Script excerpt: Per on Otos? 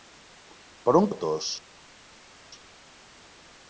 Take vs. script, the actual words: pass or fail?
pass